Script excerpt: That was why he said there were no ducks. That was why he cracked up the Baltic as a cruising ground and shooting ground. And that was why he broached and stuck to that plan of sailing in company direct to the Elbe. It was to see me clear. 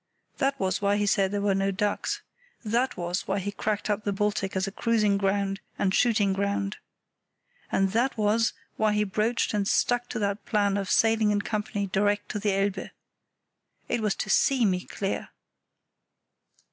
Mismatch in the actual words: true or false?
false